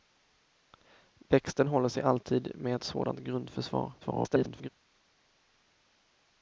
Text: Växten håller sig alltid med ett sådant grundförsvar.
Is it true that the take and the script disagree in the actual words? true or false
true